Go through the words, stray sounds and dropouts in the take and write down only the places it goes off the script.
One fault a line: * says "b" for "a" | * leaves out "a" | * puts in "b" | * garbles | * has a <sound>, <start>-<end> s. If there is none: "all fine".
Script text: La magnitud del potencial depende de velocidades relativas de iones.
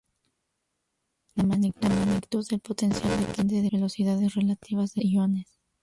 all fine